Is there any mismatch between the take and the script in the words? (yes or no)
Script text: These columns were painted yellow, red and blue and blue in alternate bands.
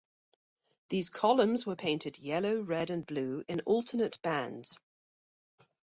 yes